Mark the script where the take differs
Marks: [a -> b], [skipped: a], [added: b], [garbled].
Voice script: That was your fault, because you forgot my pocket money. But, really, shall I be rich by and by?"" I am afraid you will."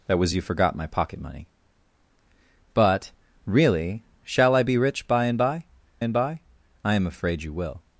That was [skipped: your fault, because] you forgot my pocket money. But, really, shall I be rich by and by?"" [added: and by] I am afraid you will."